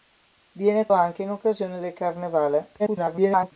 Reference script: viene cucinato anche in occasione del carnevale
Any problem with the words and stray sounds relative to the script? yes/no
yes